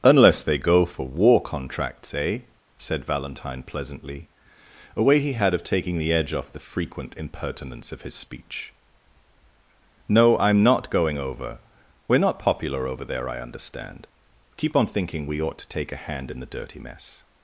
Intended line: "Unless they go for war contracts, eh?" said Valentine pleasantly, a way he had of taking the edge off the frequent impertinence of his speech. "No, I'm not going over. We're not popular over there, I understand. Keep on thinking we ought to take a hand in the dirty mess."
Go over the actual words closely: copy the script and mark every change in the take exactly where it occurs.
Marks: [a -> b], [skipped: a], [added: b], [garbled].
"Unless they go for war contracts, eh?" said Valentine pleasantly, a way he had of taking the edge off the frequent impertinence of his speech. "No, I'm not going over. We're not popular over there, I understand. Keep on thinking we ought to take a hand in the dirty mess."